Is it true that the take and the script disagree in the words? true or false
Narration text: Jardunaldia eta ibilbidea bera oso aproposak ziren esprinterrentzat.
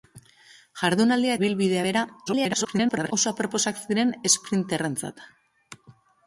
true